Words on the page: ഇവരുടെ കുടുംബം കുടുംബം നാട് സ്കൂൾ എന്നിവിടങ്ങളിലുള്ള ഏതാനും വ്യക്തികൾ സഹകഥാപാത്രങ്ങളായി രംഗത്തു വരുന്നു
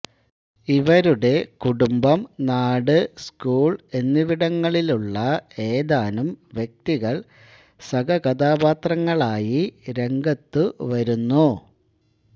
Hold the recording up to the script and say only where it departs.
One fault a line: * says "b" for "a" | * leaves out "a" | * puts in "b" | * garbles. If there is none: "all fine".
* leaves out "കുടുംബം"